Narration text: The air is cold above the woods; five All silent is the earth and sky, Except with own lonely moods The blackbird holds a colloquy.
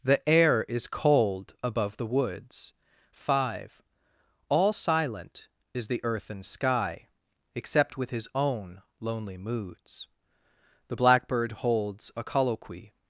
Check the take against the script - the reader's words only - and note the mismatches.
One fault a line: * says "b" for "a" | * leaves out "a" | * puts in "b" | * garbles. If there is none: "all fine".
* puts in "his"